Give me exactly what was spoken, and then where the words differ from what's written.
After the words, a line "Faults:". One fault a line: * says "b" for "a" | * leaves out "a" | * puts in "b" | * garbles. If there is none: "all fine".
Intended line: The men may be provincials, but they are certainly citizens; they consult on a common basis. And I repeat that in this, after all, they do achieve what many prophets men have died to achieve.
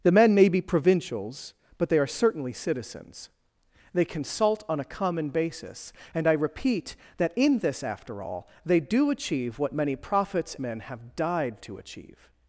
The men may be provincials, but they are certainly citizens; they consult on a common basis. And I repeat that in this, after all, they do achieve what many prophets men have died to achieve.
Faults:
all fine